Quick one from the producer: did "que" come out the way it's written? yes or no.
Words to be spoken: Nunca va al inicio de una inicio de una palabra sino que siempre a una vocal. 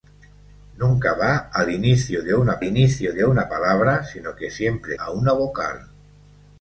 yes